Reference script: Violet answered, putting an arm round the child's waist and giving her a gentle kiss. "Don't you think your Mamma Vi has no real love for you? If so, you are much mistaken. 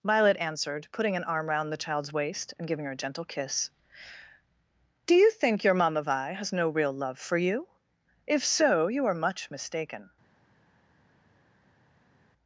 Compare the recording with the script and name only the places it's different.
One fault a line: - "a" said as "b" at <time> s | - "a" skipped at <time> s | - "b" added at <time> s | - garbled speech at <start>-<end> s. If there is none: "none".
- "Don't" said as "Do" at 5.0 s